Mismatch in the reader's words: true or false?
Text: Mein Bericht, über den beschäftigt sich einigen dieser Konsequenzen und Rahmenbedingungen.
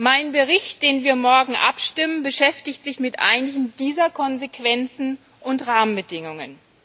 true